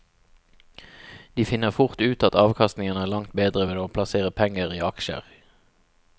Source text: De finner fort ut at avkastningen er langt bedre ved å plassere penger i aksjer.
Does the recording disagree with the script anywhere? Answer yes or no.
no